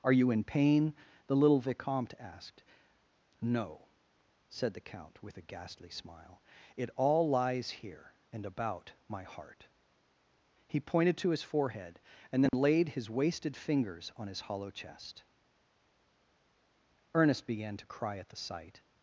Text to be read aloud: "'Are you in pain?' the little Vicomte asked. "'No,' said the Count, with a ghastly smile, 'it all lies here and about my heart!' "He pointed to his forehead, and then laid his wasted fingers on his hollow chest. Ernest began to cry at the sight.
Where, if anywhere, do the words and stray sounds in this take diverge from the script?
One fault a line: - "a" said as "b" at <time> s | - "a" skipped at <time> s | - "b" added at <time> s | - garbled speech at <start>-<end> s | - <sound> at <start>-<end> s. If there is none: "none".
- dropout at 12.5-12.5 s